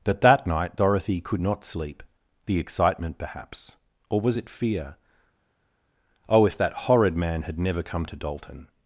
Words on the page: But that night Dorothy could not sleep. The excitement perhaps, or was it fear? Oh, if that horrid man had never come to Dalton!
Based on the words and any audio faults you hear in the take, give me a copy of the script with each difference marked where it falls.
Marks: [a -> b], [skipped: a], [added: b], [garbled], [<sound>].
[But -> That] that night Dorothy could not sleep. The excitement perhaps, or was it fear? Oh, if that horrid man had never come to Dalton!